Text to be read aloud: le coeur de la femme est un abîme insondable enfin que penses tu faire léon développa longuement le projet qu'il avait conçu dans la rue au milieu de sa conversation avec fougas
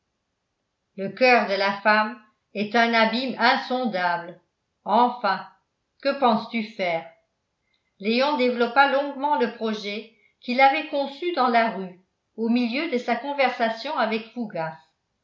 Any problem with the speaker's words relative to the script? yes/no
no